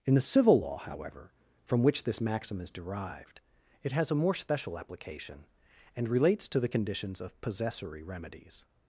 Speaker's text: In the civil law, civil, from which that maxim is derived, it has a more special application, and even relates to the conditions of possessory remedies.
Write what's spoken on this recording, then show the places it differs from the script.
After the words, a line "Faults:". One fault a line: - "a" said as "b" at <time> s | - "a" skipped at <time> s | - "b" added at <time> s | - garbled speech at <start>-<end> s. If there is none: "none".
In the civil law, however, from which this maxim is derived, it has a more special application, and relates to the conditions of possessory remedies.
Faults:
- "civil" said as "however" at 0.8 s
- "that" said as "this" at 2.0 s
- "even" skipped at 6.1 s